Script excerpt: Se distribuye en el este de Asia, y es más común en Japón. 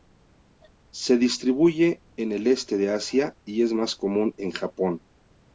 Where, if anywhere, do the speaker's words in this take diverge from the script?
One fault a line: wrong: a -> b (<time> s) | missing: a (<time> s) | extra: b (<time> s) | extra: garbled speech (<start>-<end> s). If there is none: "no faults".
no faults